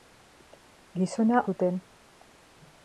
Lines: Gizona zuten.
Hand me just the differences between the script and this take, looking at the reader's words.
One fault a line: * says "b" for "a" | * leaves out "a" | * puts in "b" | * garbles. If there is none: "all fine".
all fine